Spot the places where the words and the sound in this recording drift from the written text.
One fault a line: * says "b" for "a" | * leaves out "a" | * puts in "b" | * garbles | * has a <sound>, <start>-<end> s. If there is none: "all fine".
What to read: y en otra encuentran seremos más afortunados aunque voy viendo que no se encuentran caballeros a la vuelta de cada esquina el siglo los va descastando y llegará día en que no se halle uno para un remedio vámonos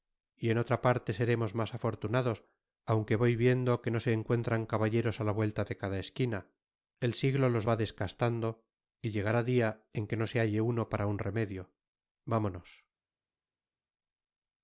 * says "parte" for "encuentran"